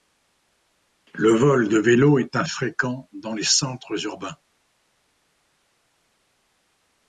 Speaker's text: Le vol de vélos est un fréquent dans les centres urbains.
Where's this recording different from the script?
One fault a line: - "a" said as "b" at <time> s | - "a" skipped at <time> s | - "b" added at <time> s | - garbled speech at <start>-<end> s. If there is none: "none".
none